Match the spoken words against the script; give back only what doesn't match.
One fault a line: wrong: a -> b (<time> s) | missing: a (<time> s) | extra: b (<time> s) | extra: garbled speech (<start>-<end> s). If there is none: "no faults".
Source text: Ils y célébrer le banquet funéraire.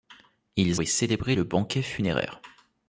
no faults